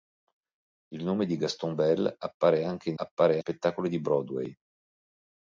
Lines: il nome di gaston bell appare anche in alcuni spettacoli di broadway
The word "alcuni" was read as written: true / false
false